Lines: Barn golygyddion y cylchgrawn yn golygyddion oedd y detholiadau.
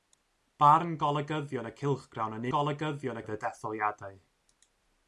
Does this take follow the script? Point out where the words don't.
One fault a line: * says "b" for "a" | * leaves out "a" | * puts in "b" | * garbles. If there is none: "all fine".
all fine